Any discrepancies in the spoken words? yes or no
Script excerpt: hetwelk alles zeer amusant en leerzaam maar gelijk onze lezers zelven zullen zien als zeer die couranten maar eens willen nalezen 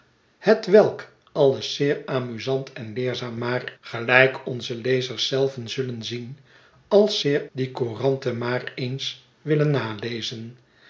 no